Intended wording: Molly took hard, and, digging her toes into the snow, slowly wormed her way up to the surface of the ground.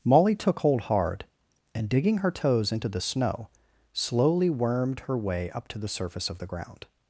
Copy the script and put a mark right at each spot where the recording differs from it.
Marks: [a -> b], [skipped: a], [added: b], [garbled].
Molly took [added: hold] hard, and, digging her toes into the snow, slowly wormed her way up to the surface of the ground.